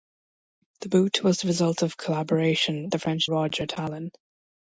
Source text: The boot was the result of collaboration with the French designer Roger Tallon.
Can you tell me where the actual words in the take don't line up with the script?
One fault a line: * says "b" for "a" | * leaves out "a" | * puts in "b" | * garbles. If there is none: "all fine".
* leaves out "with"
* leaves out "designer"